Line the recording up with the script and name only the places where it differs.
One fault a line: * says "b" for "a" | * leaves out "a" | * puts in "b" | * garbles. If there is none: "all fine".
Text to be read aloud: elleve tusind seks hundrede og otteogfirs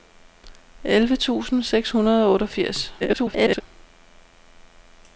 * garbles